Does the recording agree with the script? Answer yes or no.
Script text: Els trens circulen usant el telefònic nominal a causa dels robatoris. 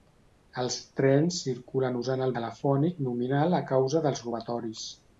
yes